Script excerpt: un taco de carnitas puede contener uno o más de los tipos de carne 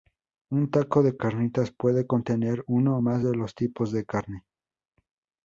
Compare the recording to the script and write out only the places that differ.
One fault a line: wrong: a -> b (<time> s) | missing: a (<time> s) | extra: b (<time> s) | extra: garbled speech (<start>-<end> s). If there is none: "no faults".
no faults